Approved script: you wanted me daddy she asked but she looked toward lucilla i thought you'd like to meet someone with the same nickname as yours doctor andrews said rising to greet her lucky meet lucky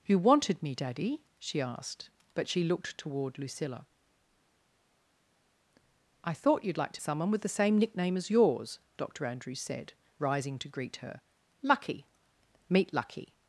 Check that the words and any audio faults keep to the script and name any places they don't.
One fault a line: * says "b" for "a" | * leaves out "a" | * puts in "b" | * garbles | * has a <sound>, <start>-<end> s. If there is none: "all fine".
* leaves out "meet"